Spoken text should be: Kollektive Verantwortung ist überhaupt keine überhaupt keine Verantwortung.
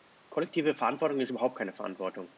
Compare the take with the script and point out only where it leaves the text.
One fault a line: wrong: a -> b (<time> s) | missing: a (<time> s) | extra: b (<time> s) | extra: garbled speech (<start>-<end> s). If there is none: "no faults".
missing: überhaupt keine (1.7 s)